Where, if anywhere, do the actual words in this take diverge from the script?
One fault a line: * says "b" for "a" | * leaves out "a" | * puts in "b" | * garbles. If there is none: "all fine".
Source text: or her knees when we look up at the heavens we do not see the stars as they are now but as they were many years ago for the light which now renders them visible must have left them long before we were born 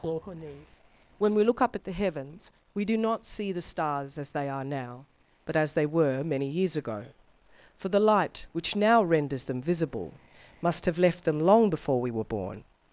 all fine